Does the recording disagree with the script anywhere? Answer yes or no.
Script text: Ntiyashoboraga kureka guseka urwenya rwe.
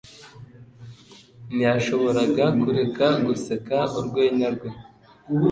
no